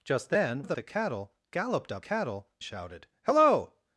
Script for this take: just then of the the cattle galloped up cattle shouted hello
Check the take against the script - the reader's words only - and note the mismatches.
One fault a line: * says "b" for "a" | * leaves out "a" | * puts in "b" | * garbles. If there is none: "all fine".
all fine